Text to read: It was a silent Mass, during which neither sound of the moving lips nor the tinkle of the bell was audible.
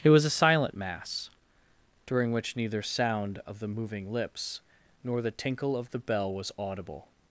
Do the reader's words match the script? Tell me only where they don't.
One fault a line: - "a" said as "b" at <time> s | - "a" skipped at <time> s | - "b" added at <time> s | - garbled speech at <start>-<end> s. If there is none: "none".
none